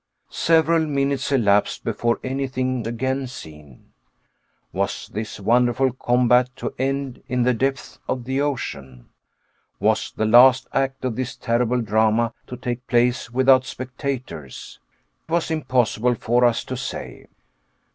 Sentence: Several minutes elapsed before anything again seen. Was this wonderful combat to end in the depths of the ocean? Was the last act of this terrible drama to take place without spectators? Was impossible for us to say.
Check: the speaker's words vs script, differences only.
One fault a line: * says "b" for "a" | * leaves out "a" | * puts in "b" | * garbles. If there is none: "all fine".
all fine